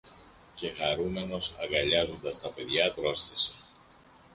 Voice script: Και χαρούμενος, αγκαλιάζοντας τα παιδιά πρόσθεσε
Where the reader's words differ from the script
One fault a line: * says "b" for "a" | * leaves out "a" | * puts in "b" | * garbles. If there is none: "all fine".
all fine